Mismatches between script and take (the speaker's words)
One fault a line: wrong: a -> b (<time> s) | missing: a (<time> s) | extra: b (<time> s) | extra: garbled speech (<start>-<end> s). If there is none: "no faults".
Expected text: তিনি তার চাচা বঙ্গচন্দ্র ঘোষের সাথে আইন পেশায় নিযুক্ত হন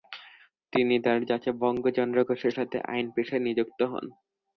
no faults